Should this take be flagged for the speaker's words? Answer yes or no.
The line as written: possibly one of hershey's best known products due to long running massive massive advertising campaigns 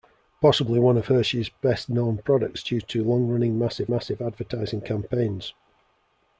no